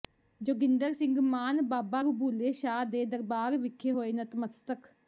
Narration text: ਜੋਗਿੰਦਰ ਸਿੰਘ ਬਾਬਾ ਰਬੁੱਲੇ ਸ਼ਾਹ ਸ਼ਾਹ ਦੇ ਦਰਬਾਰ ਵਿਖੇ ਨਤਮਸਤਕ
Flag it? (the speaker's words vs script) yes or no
yes